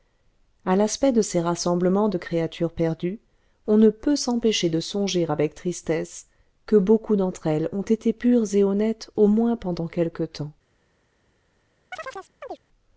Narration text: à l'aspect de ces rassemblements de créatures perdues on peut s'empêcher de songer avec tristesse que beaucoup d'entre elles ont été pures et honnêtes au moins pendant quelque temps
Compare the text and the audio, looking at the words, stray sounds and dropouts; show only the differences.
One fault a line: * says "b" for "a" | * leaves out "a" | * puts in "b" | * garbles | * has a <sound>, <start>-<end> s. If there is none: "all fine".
* puts in "ne"
* has a chirp, 11.9-12.6 s